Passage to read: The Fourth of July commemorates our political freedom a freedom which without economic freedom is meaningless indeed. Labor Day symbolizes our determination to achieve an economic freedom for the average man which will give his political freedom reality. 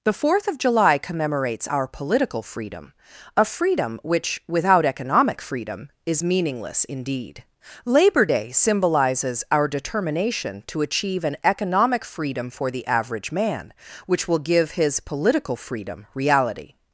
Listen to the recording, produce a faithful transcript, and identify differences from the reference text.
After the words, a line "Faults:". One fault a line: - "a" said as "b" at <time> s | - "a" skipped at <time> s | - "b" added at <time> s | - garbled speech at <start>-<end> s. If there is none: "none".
The Fourth of July commemorates our political freedom a freedom which without economic freedom is meaningless indeed. Labor Day symbolizes our determination to achieve an economic freedom for the average man which will give his political freedom reality.
Faults:
none